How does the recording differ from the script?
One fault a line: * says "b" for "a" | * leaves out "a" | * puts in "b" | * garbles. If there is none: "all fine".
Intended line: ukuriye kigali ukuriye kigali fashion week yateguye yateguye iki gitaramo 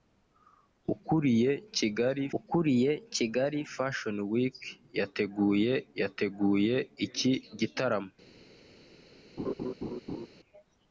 all fine